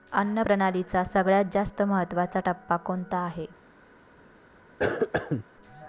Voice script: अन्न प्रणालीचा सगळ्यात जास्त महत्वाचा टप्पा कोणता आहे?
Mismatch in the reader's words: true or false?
false